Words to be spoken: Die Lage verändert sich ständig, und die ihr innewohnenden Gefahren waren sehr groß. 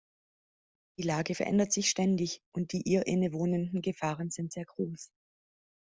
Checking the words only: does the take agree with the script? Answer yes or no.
no